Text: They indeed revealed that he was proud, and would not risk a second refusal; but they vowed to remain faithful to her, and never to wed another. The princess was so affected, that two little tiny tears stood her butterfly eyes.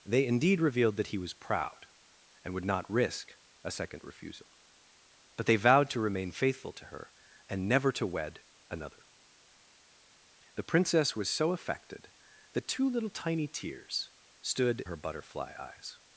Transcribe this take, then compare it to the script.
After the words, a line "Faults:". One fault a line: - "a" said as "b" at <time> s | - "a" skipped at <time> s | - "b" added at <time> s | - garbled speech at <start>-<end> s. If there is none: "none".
They indeed revealed that he was proud, and would not risk a second refusal; but they vowed to remain faithful to her, and never to wed another. The princess was so affected, that two little tiny tears stood her butterfly eyes.
Faults:
none